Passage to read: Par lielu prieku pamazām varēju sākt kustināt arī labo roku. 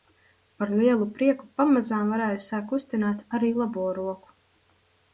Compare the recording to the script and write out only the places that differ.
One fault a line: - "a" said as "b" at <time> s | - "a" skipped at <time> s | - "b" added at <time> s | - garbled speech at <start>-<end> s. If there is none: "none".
none